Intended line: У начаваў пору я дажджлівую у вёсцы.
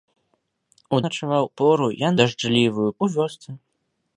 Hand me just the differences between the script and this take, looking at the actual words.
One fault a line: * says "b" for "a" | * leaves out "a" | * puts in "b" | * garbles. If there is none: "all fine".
all fine